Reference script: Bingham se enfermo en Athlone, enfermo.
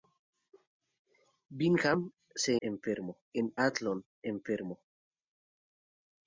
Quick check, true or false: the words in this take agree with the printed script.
true